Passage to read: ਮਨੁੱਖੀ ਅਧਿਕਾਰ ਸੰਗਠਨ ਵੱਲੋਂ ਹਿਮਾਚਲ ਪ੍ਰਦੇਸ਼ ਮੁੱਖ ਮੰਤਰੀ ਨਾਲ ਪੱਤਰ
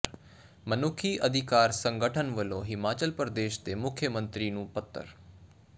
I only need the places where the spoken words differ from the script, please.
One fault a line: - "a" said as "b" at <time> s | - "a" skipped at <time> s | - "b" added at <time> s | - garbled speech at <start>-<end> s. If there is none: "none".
- "ਦੇ" added at 3.6 s
- "ਨਾਲ" said as "ਨੂੰ" at 4.5 s